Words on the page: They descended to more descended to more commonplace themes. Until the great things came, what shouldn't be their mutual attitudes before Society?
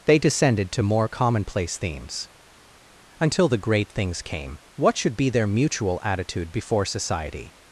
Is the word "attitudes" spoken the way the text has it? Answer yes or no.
no